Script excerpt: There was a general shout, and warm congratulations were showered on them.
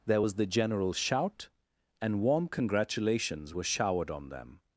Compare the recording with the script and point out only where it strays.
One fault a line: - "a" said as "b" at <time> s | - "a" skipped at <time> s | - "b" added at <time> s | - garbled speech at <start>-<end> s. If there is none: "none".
- "a" said as "the" at 0.4 s